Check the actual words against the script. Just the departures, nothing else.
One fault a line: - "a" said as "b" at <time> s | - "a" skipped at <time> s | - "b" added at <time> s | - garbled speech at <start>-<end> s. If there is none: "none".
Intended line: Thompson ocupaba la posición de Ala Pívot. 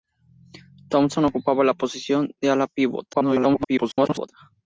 - garbled speech at 3.1-4.3 s